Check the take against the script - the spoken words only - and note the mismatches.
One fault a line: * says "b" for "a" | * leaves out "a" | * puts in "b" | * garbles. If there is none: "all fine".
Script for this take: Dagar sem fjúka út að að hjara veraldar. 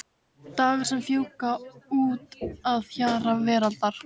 * leaves out "að"